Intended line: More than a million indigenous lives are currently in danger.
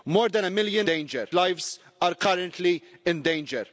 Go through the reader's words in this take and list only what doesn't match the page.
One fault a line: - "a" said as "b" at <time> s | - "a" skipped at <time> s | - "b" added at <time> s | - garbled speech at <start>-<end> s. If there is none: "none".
- "indigenous" said as "danger" at 0.8 s